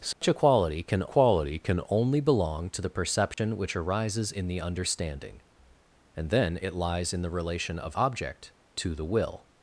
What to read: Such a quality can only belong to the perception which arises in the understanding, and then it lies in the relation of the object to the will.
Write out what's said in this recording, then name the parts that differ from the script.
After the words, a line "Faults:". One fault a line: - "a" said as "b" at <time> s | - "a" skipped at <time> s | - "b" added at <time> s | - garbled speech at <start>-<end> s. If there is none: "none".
Such a quality can quality can only belong to the perception which arises in the understanding, and then it lies in the relation of object to the will.
Faults:
- "quality can" added at 1.1 s
- "the" skipped at 8.0 s